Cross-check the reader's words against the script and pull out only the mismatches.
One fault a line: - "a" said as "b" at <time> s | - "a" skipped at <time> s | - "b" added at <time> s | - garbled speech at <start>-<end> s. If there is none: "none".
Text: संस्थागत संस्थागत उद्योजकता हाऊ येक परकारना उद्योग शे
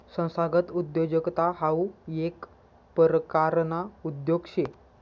- "संस्थागत" skipped at 0.7 s